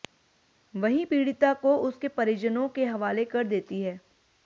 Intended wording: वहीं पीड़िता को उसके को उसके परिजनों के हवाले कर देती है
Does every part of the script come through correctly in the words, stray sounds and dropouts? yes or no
no